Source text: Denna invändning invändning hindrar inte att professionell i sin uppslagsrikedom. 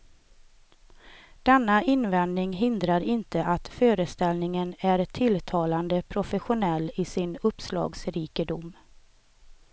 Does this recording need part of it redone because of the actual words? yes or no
yes